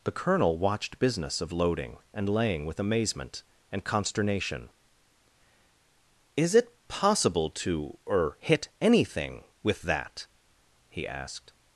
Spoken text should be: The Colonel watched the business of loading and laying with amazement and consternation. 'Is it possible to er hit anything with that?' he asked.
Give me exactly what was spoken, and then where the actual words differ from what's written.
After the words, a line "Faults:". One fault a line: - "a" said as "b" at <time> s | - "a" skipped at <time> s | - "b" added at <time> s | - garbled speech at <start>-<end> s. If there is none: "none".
The Colonel watched business of loading and laying with amazement and consternation. 'Is it possible to er hit anything with that?' he asked.
Faults:
- "the" skipped at 1.0 s